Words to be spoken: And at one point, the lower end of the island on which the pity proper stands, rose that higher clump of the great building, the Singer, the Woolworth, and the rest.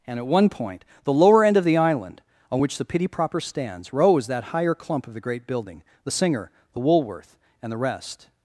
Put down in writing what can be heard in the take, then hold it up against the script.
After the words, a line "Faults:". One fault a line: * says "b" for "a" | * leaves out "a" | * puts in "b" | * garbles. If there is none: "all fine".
And at one point, the lower end of the island on which the pity proper stands, rose that higher clump of the great building, the Singer, the Woolworth, and the rest.
Faults:
all fine